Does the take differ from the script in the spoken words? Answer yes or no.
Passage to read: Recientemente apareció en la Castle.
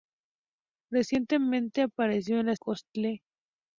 no